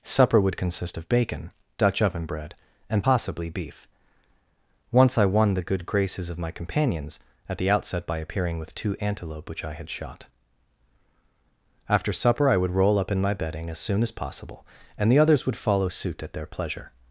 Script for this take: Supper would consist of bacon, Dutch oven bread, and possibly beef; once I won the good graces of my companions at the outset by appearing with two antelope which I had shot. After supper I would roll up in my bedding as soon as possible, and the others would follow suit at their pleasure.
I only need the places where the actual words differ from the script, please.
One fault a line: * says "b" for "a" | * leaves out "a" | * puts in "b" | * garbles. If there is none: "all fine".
all fine